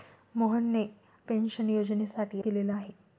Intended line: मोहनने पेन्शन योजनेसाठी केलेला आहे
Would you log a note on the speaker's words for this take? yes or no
no